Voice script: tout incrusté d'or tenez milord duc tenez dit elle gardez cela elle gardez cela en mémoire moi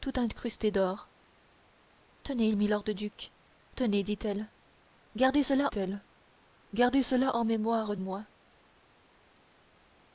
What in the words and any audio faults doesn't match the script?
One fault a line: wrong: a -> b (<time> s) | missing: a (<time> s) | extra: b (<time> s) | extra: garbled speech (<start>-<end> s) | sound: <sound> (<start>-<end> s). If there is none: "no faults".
no faults